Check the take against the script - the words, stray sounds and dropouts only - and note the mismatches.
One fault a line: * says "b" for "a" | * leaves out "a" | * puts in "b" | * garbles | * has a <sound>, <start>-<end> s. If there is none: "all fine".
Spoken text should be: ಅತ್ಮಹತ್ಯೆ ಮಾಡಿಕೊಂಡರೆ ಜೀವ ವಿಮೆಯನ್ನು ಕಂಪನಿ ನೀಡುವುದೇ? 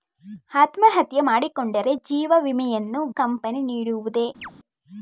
* has a chirp, 4.4-4.5 s